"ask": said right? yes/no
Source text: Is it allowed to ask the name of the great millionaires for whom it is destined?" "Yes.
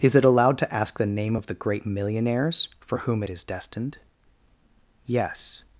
yes